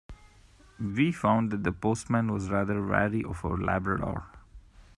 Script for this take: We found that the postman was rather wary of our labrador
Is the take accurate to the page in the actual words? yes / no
yes